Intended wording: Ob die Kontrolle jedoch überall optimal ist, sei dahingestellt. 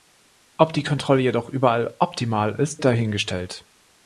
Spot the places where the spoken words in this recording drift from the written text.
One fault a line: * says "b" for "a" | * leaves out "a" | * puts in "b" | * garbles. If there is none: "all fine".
* leaves out "sei"